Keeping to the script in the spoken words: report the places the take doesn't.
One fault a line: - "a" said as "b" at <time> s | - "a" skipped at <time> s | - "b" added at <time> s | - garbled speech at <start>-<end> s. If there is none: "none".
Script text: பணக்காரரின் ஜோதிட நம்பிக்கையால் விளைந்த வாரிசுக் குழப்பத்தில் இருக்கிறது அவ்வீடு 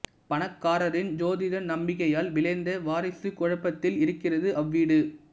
none